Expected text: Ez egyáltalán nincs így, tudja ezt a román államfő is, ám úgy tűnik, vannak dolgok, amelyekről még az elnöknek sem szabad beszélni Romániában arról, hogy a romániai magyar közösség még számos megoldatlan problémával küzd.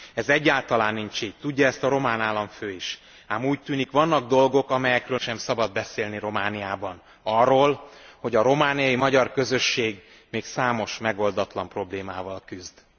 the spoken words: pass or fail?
fail